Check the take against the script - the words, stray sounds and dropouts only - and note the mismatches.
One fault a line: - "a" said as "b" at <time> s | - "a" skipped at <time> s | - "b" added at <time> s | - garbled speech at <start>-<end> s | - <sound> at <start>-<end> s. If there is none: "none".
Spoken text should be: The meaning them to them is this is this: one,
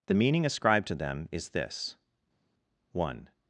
- "them" said as "ascribed" at 0.5 s
- "is this" skipped at 1.9 s